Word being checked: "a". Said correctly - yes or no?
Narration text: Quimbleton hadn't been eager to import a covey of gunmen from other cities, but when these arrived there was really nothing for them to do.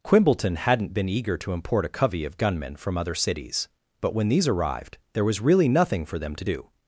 yes